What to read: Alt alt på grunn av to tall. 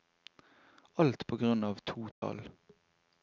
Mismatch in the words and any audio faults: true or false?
true